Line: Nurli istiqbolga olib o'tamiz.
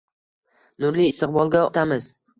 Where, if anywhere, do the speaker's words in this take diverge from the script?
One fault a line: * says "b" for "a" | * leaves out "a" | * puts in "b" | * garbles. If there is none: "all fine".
* leaves out "olib"